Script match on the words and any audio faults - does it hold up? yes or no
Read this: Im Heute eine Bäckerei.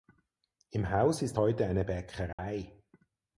no